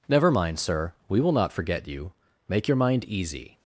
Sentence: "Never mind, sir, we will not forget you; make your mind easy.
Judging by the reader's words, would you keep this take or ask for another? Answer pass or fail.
pass